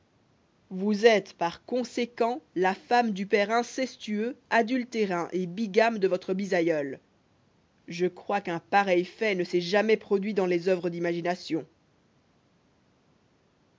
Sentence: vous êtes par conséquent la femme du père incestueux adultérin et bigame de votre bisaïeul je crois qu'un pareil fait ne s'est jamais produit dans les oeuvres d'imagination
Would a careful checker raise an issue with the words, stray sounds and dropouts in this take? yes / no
no